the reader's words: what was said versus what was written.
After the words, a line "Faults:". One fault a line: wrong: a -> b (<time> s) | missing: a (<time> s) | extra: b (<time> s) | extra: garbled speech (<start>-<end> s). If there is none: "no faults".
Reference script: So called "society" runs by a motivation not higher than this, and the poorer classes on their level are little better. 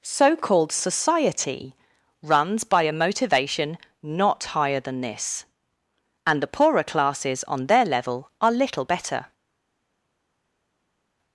So called "society" runs by a motivation not higher than this, and the poorer classes on their level are little better.
Faults:
no faults